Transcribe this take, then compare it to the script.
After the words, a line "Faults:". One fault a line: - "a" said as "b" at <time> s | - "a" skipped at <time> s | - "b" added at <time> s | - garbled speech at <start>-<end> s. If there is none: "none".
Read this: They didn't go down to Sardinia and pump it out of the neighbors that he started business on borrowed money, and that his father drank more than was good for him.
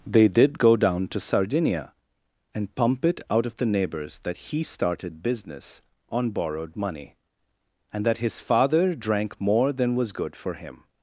They did go down to Sardinia and pump it out of the neighbors that he started business on borrowed money, and that his father drank more than was good for him.
Faults:
- "didn't" said as "did" at 0.3 s